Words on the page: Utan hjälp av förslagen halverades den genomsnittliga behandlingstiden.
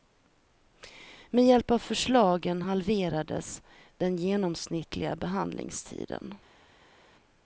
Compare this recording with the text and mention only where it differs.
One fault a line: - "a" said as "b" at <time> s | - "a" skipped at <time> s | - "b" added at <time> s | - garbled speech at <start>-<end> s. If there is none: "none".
- "Utan" said as "Med" at 1.3 s